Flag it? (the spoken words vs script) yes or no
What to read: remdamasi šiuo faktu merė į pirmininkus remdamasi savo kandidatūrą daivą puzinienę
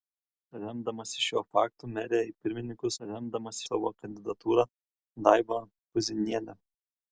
no